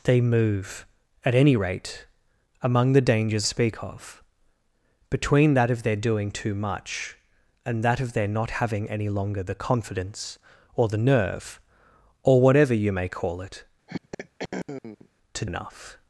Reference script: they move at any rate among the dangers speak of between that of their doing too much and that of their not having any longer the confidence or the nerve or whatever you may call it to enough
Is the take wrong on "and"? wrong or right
right